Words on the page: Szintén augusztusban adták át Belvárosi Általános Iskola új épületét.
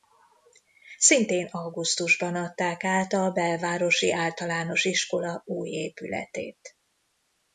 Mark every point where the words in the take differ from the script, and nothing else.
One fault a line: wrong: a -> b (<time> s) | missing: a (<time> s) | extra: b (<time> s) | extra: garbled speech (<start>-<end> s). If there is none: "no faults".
extra: a (3.1 s)